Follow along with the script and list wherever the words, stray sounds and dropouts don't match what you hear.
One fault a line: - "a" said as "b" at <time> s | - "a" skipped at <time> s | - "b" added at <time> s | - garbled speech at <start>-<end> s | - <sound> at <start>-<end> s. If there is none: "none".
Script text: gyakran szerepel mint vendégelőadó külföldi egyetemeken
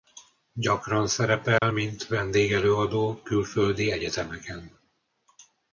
- dropout at 1.6-1.6 s